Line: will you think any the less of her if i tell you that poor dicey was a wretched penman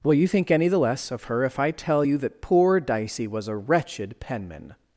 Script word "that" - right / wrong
right